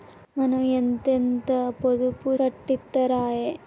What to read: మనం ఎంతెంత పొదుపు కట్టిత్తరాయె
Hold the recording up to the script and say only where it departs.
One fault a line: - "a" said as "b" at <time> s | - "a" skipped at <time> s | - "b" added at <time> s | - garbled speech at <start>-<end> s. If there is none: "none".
none